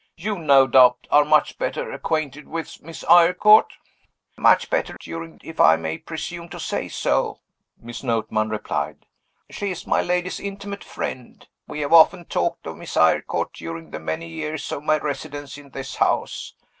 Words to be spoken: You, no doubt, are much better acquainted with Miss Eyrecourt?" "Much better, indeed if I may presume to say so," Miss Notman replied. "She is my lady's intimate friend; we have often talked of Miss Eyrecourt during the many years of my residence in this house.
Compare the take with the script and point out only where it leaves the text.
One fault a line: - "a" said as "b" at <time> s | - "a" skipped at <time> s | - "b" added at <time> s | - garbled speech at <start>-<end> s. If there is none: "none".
- "indeed" said as "during" at 5.0 s